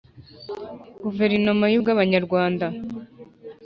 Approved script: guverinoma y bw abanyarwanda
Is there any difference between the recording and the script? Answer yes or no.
no